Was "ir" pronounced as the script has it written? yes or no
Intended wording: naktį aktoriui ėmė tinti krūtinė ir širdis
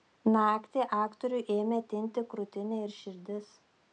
yes